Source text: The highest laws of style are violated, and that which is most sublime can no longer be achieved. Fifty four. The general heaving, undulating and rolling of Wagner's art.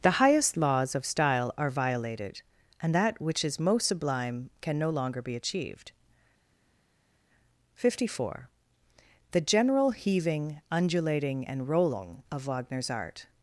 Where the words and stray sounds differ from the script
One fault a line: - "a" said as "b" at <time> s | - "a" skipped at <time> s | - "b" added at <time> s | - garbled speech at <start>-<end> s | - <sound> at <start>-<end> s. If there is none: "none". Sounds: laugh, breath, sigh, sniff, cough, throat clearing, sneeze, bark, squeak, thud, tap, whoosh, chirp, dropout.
none